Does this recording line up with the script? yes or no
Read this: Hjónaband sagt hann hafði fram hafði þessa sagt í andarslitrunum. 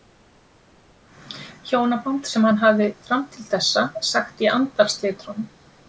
no